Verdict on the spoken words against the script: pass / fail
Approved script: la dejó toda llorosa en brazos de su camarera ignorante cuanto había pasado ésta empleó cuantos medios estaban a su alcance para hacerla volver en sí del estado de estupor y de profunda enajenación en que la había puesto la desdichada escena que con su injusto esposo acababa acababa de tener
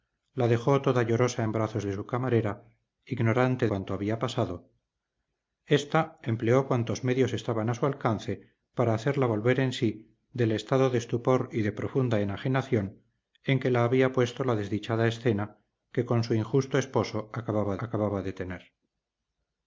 pass